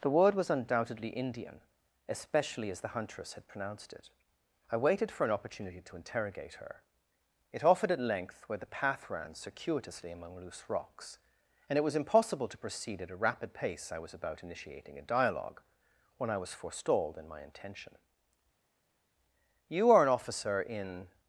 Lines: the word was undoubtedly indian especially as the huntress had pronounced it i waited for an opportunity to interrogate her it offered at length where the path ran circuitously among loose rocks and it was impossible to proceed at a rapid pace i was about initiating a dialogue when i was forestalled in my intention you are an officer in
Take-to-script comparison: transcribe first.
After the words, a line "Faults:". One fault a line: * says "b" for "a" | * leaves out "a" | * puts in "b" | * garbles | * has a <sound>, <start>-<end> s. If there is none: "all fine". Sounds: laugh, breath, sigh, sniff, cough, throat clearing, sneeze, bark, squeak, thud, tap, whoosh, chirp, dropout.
the word was undoubtedly indian especially as the huntress had pronounced it i waited for an opportunity to interrogate her it offered at length where the path ran circuitously among loose rocks and it was impossible to proceed at a rapid pace i was about initiating a dialogue when i was forestalled in my intention you are an officer in
Faults:
all fine